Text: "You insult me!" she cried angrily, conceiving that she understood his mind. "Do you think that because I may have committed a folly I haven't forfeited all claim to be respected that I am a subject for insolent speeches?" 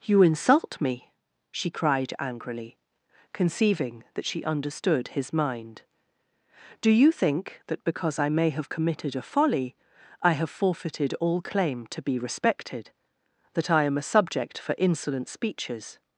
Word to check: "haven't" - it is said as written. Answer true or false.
false